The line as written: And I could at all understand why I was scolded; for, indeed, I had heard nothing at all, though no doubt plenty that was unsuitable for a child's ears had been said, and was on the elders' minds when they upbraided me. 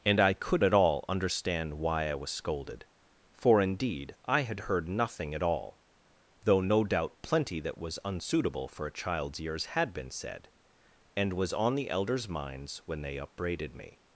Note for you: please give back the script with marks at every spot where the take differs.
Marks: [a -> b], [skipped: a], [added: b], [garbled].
And I could at all understand why I was scolded; for, indeed, I had heard nothing at all, though no doubt plenty that was unsuitable for a child's ears had been said, and was on the elders' minds when they upbraided me.